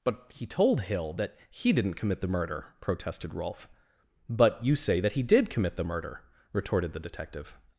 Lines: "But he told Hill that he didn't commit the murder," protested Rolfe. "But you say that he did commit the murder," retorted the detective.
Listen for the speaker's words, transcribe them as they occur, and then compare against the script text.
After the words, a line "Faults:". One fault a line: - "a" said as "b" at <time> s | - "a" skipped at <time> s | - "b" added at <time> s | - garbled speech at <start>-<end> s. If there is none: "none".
"But he told Hill that he didn't commit the murder," protested Rolfe. "But you say that he did commit the murder," retorted the detective.
Faults:
none